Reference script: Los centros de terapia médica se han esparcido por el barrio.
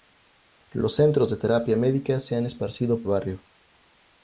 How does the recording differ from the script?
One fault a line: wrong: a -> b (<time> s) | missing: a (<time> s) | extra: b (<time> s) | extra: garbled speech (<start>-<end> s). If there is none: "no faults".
missing: por el (3.0 s)